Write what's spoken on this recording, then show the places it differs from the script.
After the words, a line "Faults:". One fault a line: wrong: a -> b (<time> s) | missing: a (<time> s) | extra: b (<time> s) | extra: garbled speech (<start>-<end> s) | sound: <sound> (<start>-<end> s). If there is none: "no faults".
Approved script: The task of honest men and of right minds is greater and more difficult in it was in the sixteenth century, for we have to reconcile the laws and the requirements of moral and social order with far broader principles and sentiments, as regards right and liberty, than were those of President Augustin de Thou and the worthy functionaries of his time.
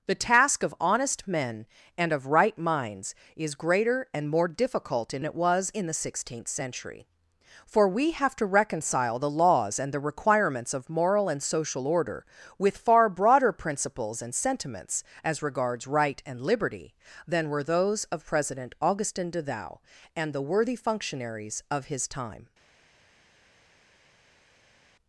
The task of honest men and of right minds is greater and more difficult in it was in the sixteenth century, for we have to reconcile the laws and the requirements of moral and social order with far broader principles and sentiments, as regards right and liberty, than were those of President Augustin de Thou and the worthy functionaries of his time.
Faults:
no faults